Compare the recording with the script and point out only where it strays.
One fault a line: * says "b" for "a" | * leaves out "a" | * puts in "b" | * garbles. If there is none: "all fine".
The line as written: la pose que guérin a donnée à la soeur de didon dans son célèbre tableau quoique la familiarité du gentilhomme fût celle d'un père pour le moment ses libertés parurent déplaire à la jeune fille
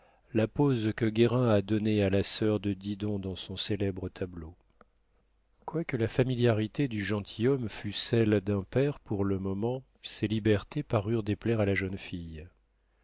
all fine